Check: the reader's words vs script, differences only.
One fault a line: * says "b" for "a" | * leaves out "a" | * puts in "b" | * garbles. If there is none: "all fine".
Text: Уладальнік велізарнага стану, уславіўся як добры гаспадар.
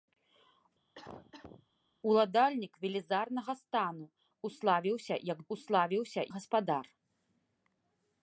* says "уславіўся" for "добры"